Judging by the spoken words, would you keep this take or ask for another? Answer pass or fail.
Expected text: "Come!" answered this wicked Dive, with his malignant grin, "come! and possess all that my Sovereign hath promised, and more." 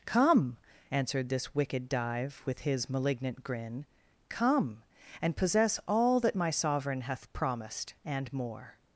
pass